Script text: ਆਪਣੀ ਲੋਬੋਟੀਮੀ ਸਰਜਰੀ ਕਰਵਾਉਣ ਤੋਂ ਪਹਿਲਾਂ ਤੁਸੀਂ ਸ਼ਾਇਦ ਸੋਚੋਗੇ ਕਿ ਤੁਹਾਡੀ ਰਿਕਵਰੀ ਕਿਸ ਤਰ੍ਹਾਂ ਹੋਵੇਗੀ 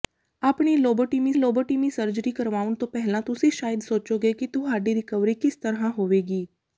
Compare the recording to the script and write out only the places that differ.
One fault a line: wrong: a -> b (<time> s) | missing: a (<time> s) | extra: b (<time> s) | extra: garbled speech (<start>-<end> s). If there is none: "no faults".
extra: ਲੋਬੋਟੀਮੀ (1.4 s)